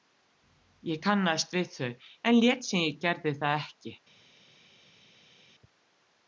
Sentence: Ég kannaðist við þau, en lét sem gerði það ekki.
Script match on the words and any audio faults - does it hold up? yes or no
no